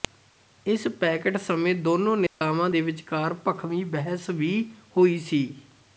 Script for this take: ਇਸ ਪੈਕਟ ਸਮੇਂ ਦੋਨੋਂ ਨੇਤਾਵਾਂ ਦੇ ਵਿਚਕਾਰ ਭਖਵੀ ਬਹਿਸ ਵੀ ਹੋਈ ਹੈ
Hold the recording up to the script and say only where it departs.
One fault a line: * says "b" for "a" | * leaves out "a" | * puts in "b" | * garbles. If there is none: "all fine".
* says "ਸੀ" for "ਹੈ"